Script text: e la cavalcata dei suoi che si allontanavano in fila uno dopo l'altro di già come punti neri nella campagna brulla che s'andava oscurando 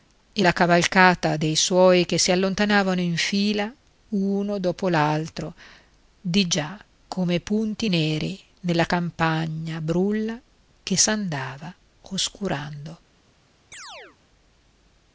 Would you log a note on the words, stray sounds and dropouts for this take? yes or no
yes